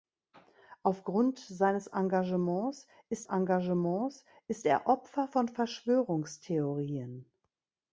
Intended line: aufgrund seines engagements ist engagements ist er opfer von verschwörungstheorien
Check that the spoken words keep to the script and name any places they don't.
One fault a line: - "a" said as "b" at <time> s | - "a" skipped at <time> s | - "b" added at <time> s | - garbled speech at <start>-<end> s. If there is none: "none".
none